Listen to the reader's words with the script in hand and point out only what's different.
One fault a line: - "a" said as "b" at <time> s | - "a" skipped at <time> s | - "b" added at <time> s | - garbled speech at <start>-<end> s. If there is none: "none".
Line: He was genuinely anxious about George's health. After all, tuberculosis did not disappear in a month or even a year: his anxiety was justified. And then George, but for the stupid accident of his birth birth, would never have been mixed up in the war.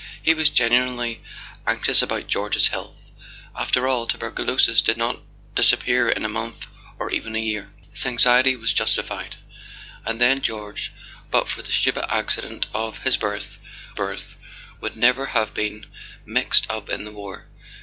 none